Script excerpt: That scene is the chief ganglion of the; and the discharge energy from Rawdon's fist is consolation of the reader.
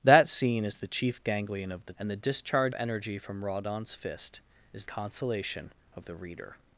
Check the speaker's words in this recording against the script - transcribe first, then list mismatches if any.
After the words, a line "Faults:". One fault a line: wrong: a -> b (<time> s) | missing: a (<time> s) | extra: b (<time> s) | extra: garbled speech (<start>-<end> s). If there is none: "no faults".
That scene is the chief ganglion of the; and the discharge energy from Rawdon's fist is consolation of the reader.
Faults:
no faults